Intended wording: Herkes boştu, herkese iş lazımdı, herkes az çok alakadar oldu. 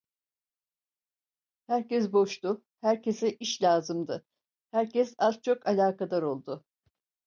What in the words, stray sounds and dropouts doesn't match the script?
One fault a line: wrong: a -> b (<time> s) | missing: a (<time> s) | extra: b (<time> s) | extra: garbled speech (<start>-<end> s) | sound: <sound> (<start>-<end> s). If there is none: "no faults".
no faults